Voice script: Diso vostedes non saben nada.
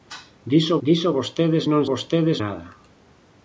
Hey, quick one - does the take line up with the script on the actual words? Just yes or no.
no